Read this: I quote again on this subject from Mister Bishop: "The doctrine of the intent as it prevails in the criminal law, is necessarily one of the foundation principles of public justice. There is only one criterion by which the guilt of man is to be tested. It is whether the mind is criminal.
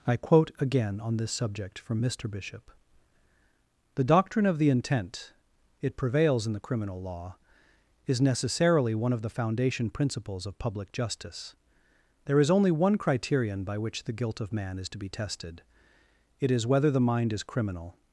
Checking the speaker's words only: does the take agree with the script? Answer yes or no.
no